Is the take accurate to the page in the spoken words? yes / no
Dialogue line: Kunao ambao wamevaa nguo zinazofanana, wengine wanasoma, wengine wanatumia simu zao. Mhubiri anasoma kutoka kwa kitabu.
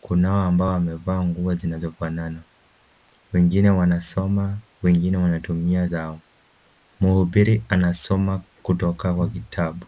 no